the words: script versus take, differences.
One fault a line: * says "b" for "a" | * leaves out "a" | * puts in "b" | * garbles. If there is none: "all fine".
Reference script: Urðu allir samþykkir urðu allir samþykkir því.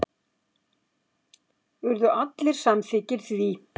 * leaves out "urðu allir samþykkir"